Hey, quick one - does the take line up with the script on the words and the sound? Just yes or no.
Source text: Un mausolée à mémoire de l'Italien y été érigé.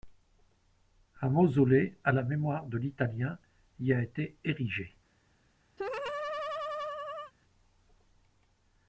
no